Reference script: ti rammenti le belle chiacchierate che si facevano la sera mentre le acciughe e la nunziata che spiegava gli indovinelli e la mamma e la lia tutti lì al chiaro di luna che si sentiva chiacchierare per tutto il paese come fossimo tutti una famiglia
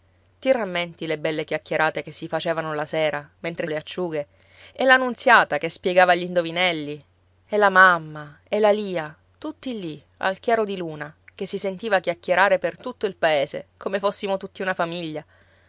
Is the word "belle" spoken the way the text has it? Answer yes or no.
yes